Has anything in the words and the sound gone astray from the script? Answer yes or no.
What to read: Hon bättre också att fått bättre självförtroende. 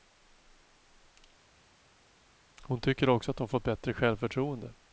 yes